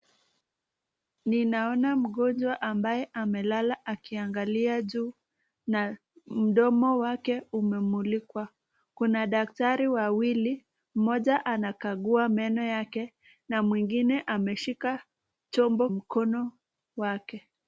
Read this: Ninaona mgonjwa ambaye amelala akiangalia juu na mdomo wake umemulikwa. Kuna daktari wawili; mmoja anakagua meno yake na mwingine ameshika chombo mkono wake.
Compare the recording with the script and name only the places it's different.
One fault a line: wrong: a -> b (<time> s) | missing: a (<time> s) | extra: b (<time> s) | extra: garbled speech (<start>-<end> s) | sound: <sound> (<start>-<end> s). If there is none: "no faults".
no faults